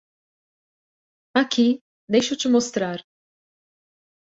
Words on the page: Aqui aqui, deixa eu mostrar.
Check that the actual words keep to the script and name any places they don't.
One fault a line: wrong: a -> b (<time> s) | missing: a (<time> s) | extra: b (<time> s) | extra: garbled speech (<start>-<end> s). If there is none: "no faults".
missing: aqui (1.8 s)
extra: te (2.4 s)